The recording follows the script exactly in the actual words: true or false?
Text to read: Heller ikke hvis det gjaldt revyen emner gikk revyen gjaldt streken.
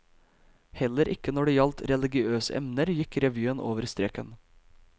false